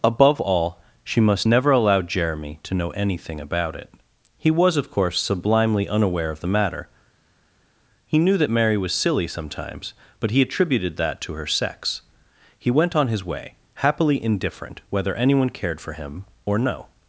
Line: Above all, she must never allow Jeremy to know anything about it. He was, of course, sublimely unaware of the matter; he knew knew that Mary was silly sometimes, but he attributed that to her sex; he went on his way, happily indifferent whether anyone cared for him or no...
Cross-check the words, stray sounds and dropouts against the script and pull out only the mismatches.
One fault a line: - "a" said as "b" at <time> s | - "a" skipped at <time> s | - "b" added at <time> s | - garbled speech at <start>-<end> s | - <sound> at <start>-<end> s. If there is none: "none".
- "knew" skipped at 8.4 s